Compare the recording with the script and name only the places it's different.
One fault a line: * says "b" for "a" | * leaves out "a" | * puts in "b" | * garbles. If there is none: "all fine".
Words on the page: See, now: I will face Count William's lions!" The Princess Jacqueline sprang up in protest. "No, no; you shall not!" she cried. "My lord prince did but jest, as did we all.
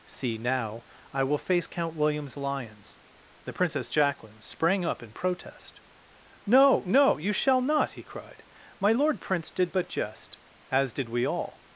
* says "he" for "she"